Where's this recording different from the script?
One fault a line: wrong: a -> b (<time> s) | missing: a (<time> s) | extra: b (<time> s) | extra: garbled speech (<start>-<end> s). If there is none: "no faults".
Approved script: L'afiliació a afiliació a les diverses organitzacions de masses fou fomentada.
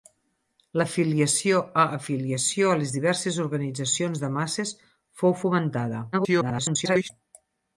extra: garbled speech (6.1-7.1 s)